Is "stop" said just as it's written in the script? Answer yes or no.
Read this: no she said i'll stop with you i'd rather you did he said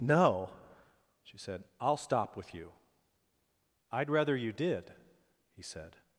yes